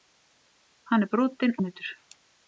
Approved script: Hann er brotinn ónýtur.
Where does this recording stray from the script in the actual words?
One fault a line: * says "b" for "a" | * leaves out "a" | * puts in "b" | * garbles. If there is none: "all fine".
all fine